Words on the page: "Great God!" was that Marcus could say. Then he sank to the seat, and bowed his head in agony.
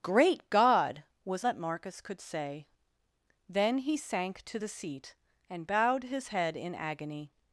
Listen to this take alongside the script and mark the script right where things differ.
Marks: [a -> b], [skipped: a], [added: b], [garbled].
"Great God!" was that Marcus could say. Then he sank to the seat, and bowed his head in agony.